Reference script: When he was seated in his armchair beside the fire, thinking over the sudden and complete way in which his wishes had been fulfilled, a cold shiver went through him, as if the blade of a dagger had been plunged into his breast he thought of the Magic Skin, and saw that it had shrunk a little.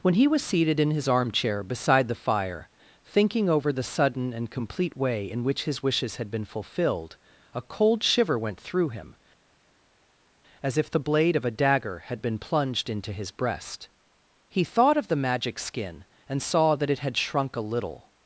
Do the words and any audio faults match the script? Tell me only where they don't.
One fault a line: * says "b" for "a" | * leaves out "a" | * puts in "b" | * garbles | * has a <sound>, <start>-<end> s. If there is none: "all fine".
all fine